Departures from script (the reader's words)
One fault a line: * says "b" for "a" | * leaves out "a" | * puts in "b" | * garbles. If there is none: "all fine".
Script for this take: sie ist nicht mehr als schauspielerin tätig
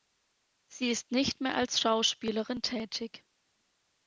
all fine